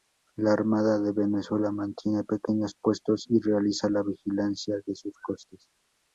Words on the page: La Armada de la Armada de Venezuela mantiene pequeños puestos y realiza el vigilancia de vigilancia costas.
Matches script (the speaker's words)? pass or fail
fail